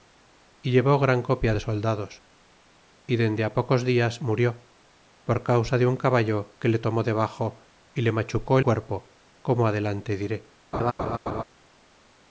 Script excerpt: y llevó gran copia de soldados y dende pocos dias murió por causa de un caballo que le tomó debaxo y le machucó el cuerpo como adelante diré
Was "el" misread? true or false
true